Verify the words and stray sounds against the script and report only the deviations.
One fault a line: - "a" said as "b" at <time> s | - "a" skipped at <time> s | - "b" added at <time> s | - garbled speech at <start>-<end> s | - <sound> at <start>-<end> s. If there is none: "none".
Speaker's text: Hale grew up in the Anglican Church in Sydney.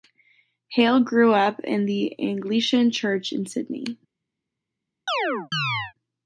- chirp at 5.1-5.9 s